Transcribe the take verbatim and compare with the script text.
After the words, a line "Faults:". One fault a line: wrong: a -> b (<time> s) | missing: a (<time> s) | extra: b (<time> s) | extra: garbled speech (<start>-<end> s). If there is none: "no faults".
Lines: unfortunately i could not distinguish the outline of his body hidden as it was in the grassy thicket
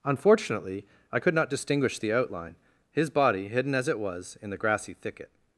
unfortunately i could not distinguish the outline his body hidden as it was in the grassy thicket
Faults:
missing: of (2.6 s)